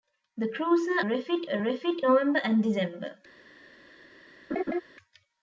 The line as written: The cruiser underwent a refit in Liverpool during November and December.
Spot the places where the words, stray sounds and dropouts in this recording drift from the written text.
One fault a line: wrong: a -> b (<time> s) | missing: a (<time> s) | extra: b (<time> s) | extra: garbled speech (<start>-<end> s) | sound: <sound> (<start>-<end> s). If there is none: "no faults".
wrong: underwent -> refit (1.0 s)
missing: in Liverpool during (2.0 s)
sound: laugh (4.5-4.8 s)